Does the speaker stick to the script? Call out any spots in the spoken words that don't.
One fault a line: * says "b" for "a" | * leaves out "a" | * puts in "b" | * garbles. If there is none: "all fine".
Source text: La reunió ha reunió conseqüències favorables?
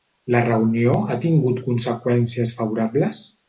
* says "tingut" for "reunió"